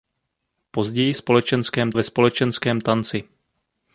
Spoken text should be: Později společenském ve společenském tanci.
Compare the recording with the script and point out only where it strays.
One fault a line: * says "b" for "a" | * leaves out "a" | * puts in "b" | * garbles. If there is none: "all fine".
all fine